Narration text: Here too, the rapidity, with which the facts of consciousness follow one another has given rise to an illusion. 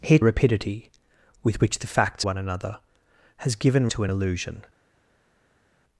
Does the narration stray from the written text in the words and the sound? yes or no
yes